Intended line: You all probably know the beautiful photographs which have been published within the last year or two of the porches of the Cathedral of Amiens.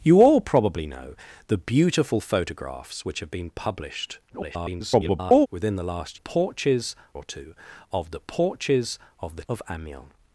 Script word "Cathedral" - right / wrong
wrong